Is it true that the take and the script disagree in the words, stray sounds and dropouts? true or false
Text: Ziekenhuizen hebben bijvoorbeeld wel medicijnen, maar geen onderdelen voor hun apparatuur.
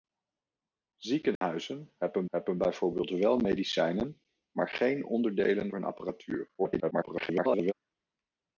true